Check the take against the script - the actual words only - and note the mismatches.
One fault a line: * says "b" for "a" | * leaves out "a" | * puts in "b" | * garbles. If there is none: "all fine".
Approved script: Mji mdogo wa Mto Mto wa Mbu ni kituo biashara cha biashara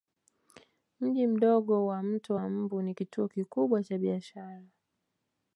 * leaves out "Mto"
* says "kikubwa" for "biashara"